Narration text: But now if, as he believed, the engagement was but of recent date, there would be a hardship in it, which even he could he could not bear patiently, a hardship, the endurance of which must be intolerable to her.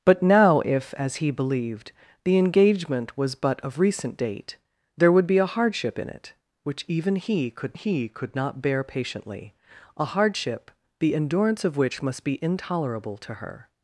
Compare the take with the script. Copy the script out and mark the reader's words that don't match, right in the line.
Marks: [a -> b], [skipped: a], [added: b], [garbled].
But now if, as he believed, the engagement was but of recent date, there would be a hardship in it, which even he could he could not bear patiently, a hardship, the endurance of which must be intolerable to her.